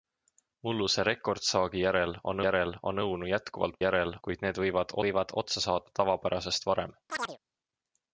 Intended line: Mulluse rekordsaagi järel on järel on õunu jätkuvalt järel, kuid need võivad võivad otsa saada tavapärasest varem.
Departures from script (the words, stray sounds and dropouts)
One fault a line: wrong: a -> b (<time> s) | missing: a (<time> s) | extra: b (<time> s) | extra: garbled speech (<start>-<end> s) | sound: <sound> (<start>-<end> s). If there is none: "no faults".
sound: chirp (7.1-7.4 s)